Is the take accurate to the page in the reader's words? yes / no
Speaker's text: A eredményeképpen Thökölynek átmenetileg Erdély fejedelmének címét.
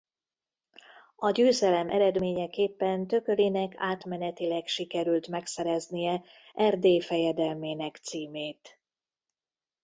no